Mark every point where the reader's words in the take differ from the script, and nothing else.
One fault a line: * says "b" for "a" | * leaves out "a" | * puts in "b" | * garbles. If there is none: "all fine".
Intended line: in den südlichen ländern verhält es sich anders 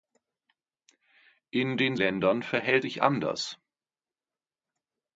* leaves out "südlichen"
* leaves out "es"